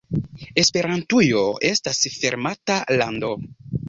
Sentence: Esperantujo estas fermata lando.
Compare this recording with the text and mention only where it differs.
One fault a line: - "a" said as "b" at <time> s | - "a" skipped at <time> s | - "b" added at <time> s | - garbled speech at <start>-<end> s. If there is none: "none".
none